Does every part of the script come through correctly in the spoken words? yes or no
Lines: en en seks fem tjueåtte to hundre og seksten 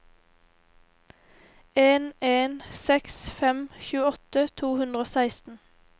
yes